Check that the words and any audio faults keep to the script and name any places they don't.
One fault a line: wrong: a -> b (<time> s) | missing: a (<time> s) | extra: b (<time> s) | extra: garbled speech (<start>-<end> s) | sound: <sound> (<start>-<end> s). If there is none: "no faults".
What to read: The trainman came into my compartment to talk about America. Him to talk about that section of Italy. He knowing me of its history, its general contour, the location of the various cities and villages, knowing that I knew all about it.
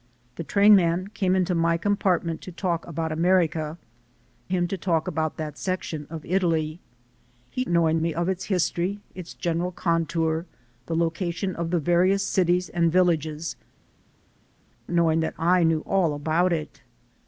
no faults